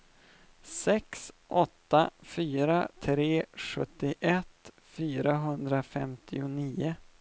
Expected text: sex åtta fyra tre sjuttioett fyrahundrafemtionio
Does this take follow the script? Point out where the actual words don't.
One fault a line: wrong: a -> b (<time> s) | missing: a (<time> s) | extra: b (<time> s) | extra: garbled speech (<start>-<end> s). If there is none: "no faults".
no faults